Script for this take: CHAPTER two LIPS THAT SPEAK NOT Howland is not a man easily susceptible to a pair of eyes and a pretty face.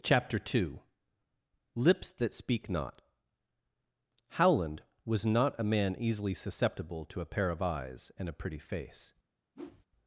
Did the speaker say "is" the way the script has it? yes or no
no